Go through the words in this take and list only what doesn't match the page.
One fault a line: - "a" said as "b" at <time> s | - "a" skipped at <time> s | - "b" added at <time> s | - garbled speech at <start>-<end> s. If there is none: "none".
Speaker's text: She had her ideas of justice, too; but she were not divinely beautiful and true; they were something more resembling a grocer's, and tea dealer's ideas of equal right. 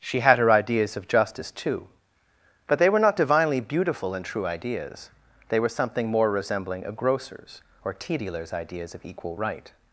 - "she" said as "they" at 2.8 s
- "ideas" added at 4.5 s
- "and" said as "or" at 7.8 s